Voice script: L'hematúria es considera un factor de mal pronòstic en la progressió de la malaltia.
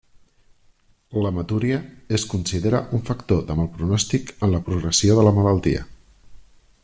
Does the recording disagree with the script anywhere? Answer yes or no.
no